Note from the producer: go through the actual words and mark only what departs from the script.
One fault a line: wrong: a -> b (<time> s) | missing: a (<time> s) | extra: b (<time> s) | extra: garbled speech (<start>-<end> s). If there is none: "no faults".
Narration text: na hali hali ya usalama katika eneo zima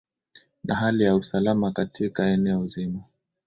missing: hali (1.0 s)